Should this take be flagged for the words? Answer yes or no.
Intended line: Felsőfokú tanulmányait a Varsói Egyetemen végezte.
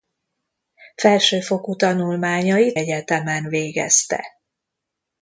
yes